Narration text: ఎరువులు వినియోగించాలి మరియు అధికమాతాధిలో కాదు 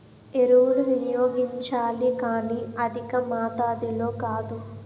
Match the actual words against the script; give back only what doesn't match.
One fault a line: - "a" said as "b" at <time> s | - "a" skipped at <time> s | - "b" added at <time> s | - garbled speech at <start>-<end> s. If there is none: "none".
- "మరియు" said as "కానీ" at 2.2 s